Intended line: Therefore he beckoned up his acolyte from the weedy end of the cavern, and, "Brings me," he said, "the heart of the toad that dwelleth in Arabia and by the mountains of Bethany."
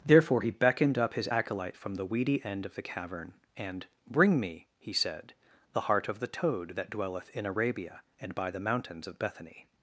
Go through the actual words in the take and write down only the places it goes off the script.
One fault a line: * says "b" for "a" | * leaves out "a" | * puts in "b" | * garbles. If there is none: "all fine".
* says "Bring" for "Brings"